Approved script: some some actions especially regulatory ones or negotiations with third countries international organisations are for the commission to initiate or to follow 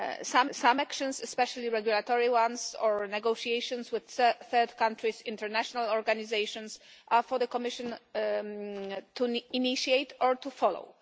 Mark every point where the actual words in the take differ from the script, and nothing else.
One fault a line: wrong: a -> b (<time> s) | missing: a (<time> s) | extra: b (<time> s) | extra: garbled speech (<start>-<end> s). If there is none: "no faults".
no faults